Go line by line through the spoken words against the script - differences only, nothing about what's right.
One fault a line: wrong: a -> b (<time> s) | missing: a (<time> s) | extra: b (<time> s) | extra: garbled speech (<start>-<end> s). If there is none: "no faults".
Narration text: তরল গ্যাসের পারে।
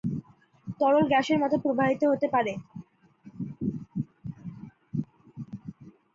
extra: মতো প্রবাহিত হতে (1.4 s)